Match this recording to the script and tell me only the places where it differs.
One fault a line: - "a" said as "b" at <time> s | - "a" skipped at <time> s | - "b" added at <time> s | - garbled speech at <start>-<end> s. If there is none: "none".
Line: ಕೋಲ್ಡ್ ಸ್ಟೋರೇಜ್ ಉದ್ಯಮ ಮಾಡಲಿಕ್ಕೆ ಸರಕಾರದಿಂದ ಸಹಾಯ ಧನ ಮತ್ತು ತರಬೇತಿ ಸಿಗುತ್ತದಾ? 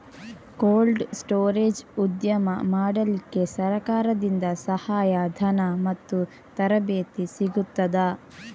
none